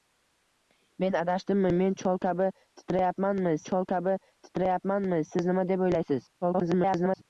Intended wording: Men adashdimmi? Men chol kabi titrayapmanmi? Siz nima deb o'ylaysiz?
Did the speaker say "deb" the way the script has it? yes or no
yes